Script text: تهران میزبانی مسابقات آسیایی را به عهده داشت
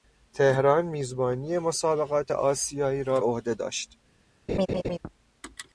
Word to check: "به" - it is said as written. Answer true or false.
false